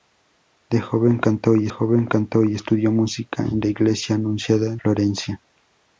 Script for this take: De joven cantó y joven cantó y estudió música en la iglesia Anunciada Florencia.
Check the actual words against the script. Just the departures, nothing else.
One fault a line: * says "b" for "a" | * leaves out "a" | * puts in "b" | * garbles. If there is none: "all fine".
all fine